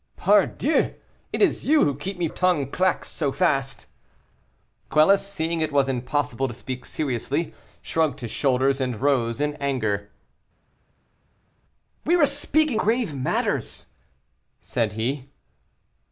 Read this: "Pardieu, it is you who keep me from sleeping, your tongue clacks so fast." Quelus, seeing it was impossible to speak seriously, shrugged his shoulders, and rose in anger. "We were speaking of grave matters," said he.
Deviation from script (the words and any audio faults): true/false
true